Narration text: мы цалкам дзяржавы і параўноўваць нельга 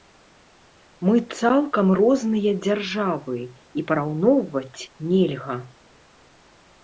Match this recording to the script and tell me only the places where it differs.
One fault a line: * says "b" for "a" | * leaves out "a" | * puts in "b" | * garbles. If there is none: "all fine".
* puts in "розныя"